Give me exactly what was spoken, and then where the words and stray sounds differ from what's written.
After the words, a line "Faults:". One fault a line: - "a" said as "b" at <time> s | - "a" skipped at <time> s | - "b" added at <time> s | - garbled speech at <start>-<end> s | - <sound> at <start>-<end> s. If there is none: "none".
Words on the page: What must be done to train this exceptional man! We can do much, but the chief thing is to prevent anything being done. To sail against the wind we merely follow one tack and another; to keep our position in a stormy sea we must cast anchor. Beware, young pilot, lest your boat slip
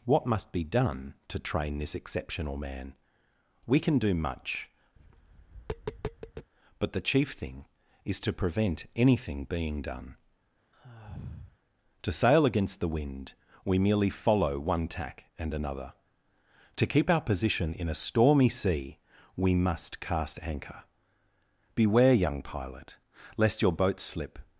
What must be done to train this exceptional man! We can do much, but the chief thing is to prevent anything being done. To sail against the wind we merely follow one tack and another; to keep our position in a stormy sea we must cast anchor. Beware, young pilot, lest your boat slip
Faults:
- tap at 5.0-6.5 s
- sigh at 10.7-11.6 s